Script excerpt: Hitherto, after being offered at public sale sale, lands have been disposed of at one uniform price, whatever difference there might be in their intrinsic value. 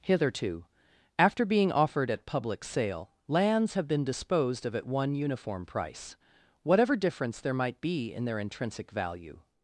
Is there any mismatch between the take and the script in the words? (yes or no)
yes